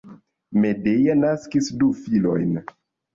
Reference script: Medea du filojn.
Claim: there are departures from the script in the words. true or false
true